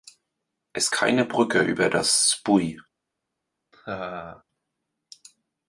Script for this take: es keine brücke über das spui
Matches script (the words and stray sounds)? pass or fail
fail